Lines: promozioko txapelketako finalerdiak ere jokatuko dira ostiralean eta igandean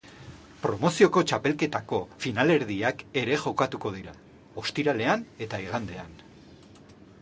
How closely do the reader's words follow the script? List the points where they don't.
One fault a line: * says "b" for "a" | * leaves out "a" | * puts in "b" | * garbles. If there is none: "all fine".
all fine